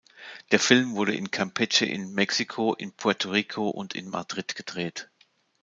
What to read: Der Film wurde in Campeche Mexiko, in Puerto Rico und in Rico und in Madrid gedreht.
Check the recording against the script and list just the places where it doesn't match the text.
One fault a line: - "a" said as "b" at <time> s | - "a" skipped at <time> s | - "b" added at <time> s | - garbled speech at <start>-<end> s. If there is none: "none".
- "in" added at 1.9 s
- "Rico und in" skipped at 4.1 s